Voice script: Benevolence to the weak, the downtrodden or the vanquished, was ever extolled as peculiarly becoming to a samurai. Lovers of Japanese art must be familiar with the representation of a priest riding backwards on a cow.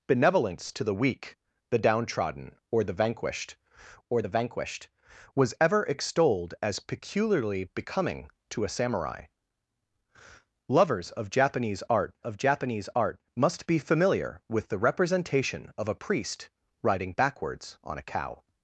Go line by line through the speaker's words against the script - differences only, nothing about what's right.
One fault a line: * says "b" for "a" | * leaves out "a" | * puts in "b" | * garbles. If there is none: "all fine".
* puts in "or the vanquished"
* puts in "of Japanese art"